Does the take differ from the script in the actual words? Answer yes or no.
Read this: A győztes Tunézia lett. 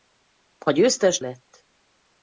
yes